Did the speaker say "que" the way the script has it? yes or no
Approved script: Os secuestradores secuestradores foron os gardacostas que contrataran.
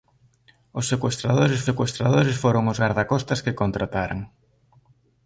yes